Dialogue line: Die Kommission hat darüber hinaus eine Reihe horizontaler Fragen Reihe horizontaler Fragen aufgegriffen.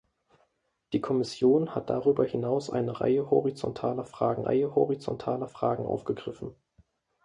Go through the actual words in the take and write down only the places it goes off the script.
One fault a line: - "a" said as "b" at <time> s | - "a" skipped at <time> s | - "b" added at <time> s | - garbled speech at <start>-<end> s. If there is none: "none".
none